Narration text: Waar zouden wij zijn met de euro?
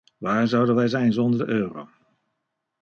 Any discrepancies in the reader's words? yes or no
yes